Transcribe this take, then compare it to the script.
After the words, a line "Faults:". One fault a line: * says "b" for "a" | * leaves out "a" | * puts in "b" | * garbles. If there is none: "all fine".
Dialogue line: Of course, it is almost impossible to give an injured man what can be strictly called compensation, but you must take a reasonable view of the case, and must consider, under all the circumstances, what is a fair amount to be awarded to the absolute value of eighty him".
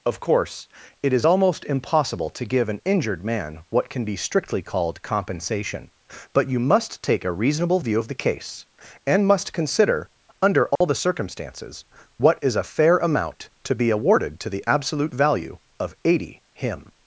Of course, it is almost impossible to give an injured man what can be strictly called compensation, but you must take a reasonable view of the case, and must consider, under all the circumstances, what is a fair amount to be awarded to the absolute value of eighty him".
Faults:
all fine